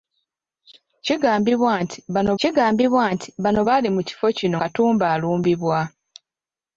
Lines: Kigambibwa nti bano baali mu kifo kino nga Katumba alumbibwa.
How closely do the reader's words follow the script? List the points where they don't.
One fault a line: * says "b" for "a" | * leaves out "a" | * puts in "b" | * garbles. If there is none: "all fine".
* puts in "kigambibwa nti bano"
* leaves out "nga"